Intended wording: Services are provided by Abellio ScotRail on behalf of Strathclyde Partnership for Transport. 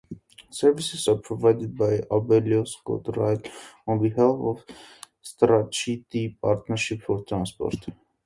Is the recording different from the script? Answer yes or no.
no